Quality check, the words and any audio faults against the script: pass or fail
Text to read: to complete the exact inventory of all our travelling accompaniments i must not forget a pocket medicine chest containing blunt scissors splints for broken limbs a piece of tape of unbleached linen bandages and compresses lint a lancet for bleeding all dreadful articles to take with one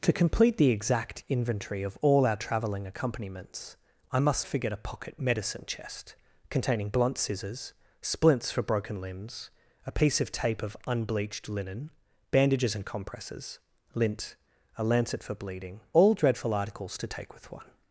fail